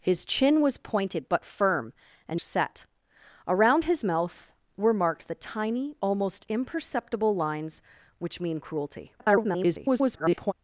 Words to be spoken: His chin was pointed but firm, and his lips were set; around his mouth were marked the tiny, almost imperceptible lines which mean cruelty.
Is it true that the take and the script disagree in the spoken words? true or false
true